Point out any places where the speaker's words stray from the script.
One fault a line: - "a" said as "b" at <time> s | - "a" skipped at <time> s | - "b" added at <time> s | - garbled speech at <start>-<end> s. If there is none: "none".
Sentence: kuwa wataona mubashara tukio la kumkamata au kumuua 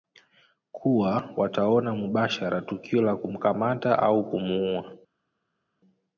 none